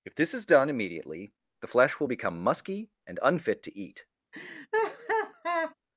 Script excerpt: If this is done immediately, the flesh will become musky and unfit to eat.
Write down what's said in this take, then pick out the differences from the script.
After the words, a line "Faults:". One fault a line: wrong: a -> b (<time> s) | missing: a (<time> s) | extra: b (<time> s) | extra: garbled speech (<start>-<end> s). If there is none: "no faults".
If this is done immediately, the flesh will become musky and unfit to eat.
Faults:
no faults